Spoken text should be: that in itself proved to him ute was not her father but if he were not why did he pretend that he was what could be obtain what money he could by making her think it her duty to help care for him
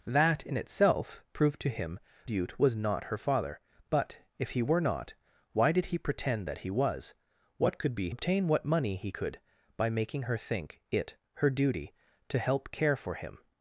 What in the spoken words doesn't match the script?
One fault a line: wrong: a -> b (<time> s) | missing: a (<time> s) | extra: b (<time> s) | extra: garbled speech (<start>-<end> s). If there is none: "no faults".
no faults